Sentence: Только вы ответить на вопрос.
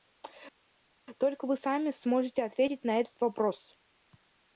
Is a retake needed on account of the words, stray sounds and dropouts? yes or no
yes